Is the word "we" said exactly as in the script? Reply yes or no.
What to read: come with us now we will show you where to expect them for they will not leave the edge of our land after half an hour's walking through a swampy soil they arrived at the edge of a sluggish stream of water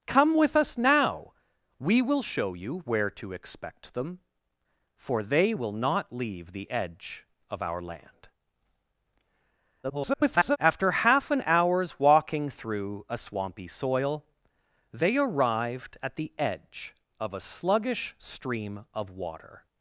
yes